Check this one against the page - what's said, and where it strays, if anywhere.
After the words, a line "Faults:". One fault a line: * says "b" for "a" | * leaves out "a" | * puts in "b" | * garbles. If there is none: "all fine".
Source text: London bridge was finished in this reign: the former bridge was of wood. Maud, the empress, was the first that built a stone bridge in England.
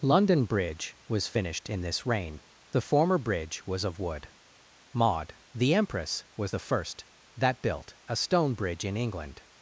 London bridge was finished in this reign: the former bridge was of wood. Maud, the empress, was the first that built a stone bridge in England.
Faults:
all fine